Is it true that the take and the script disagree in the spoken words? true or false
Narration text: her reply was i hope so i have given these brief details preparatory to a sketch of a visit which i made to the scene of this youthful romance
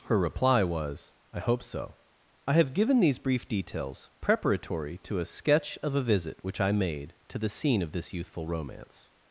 false